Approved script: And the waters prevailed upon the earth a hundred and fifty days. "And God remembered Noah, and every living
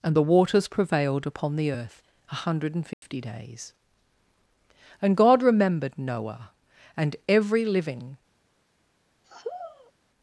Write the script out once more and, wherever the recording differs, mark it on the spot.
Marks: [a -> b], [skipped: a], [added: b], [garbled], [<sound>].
And the waters prevailed upon the earth a hundred and fifty [dropout] days. "And God remembered Noah, and every living [sigh]